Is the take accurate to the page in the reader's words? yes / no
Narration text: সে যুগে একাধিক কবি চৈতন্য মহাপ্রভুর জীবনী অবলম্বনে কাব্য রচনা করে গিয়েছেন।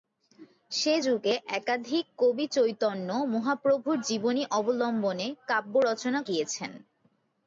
no